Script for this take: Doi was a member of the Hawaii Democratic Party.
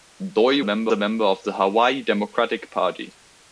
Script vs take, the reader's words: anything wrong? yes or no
yes